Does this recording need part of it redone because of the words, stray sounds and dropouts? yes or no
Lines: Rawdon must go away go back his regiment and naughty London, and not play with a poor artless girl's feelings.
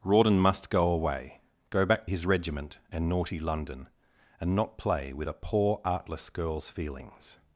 no